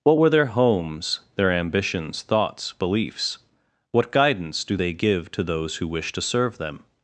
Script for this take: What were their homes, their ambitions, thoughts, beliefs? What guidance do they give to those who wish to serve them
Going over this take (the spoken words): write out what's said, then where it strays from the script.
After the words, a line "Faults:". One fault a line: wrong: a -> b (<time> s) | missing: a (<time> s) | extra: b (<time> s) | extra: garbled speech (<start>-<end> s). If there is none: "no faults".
What were their homes, their ambitions, thoughts, beliefs? What guidance do they give to those who wish to serve them
Faults:
no faults